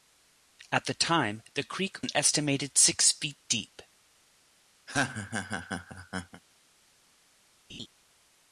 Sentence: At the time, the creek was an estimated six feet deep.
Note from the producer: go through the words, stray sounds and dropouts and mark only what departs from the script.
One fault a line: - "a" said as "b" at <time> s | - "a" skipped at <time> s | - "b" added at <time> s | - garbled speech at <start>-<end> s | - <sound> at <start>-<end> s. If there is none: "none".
- "was" skipped at 2.0 s
- laugh at 4.9-6.4 s
- laugh at 7.7-7.9 s